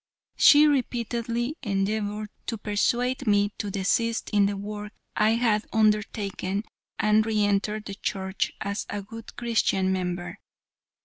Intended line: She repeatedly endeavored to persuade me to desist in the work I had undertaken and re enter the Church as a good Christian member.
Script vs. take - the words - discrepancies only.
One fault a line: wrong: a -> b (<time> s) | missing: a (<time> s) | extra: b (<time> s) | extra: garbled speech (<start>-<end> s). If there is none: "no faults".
no faults